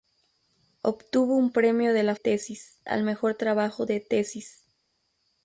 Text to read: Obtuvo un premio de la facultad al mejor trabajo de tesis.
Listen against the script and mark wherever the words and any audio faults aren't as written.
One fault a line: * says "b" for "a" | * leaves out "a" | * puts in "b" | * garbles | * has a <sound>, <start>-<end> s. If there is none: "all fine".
* says "tesis" for "facultad"